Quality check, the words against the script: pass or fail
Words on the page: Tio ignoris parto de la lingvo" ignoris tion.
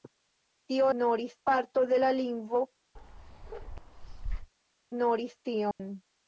pass